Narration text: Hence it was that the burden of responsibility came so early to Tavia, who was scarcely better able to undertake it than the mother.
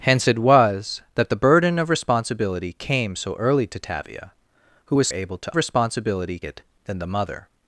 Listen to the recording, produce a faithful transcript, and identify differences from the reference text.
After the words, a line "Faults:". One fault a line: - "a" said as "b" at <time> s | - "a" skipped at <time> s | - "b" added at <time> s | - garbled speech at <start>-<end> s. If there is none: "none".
Hence it was that the burden of responsibility came so early to Tavia, who was able to responsibility it than the mother.
Faults:
- "scarcely better" skipped at 5.1 s
- "undertake" said as "responsibility" at 5.5 s